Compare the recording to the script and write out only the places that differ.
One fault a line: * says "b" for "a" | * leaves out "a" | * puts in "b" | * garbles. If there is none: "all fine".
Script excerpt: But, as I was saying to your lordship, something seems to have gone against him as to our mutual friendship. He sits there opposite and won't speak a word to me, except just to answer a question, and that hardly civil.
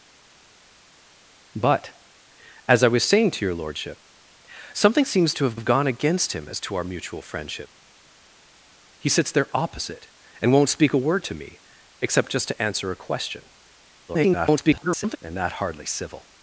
* puts in "have"
* garbles